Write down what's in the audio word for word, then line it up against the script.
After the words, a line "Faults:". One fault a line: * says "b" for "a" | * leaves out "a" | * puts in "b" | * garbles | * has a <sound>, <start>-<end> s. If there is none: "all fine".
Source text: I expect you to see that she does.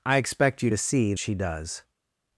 I expect you to see she does.
Faults:
* leaves out "that"